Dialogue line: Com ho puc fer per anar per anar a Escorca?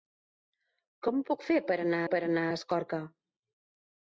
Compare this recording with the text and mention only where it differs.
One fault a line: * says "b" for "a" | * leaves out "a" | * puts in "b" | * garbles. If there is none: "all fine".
all fine